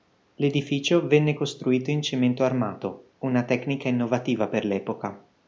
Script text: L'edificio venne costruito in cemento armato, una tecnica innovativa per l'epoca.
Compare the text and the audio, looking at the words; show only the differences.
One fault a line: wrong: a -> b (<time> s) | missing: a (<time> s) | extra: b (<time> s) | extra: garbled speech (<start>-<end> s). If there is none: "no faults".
no faults